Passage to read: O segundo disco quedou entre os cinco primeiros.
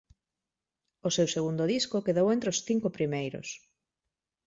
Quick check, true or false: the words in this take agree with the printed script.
false